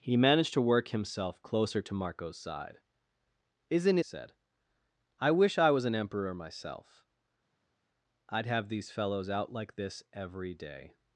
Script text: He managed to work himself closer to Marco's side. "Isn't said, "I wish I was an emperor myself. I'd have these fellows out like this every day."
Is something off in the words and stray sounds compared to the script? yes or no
no